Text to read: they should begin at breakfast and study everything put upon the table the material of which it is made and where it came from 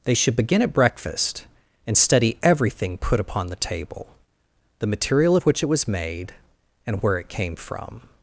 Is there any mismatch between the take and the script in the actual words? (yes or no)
yes